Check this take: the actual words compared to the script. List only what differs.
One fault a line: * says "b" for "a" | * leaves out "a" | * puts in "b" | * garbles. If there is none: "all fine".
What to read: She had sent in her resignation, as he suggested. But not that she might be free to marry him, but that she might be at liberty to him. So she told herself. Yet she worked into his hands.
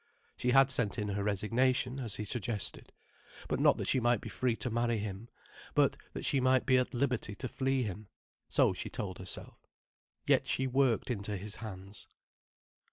* puts in "flee"